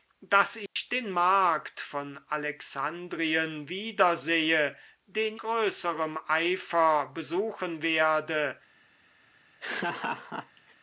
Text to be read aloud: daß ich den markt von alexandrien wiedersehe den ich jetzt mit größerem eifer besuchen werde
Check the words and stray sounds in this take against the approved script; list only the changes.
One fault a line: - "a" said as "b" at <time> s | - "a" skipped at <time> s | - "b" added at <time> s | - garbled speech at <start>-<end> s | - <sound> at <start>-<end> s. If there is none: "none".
- dropout at 0.7-0.8 s
- "ich jetzt mit" skipped at 5.4 s
- laugh at 9.6-10.7 s